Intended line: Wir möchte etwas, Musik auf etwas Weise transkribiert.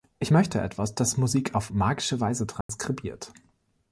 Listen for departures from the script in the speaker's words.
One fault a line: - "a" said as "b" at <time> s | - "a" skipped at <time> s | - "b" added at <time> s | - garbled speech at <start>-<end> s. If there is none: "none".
- "Wir" said as "Ich" at 0.2 s
- "das" added at 0.9 s
- "etwas" said as "magische" at 1.7 s